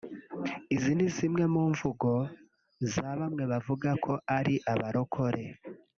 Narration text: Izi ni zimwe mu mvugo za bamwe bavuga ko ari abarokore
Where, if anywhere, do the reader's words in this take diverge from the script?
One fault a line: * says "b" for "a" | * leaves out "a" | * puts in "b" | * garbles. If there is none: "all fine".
all fine